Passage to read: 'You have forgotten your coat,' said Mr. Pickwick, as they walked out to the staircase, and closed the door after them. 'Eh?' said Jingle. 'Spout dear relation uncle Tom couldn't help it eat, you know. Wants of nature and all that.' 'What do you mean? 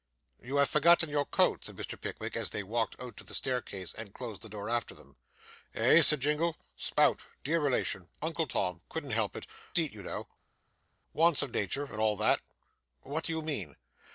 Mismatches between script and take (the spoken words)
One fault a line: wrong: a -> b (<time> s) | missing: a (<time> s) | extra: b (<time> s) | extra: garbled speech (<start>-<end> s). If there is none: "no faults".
no faults